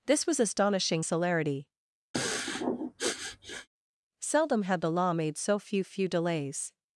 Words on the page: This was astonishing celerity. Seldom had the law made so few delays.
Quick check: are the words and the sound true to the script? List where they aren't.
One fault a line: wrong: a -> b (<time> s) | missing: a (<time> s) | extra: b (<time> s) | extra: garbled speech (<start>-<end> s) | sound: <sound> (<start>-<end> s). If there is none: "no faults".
sound: sniff (2.1-3.7 s)
extra: few (5.8 s)